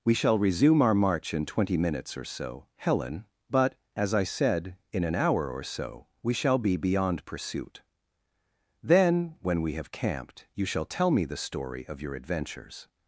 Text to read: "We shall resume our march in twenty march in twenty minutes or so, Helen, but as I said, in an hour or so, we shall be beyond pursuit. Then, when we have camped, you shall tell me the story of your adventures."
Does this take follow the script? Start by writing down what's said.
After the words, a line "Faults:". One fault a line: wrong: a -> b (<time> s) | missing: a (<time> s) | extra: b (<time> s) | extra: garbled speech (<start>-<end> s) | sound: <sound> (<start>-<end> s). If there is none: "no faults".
"We shall resume our march in twenty minutes or so, Helen, but as I said, in an hour or so, we shall be beyond pursuit. Then, when we have camped, you shall tell me the story of your adventures."
Faults:
missing: march in twenty (1.8 s)